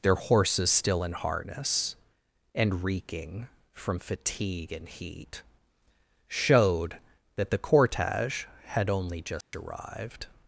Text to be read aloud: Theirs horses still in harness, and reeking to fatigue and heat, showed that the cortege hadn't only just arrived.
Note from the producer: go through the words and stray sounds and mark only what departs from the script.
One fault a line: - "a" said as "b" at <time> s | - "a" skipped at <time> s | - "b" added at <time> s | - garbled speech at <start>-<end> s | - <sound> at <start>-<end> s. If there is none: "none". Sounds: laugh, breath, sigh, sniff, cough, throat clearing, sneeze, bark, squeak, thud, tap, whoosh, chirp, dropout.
- "Theirs" said as "Their" at 0.0 s
- "to" said as "from" at 3.7 s
- "hadn't" said as "had" at 8.7 s
- dropout at 9.4-9.5 s